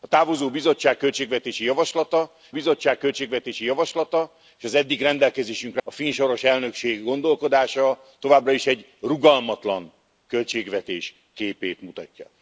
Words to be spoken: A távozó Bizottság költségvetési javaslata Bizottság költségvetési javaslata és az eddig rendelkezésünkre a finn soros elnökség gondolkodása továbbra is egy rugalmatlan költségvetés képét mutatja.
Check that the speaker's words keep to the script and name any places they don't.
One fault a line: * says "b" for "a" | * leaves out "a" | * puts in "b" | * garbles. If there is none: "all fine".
all fine